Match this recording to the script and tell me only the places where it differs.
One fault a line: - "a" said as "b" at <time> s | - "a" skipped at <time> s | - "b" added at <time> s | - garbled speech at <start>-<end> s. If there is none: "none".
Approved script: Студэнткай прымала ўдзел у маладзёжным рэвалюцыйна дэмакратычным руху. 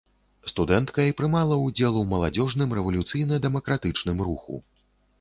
none